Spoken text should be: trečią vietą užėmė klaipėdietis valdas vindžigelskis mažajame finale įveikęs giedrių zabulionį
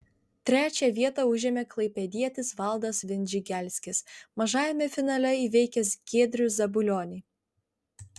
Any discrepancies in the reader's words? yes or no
no